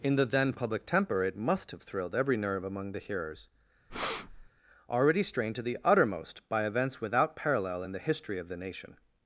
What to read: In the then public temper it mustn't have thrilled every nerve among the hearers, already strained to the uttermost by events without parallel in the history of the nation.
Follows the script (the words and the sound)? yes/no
no